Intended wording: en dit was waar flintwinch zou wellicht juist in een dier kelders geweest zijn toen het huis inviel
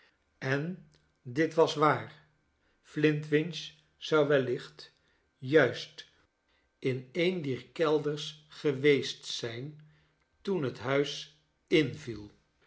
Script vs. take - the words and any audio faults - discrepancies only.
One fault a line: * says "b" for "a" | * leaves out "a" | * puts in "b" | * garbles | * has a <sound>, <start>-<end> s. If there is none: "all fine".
all fine